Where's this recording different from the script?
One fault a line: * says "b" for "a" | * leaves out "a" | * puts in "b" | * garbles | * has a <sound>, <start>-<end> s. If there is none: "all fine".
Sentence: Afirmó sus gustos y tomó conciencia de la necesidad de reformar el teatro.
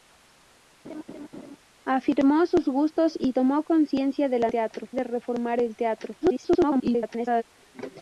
* has a laugh, 0.8-1.6 s
* says "teatro" for "necesidad"
* garbles